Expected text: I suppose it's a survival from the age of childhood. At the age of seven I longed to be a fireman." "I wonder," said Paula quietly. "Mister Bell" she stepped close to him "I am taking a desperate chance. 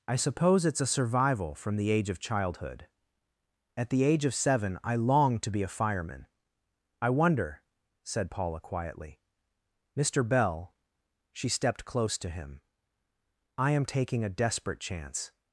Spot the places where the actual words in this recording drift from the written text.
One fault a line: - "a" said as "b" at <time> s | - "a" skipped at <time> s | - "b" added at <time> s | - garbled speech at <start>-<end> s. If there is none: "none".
none